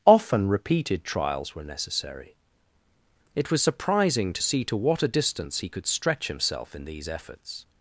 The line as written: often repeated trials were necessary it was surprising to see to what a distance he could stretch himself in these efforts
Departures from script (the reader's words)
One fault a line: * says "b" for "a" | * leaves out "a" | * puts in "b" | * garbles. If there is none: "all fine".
all fine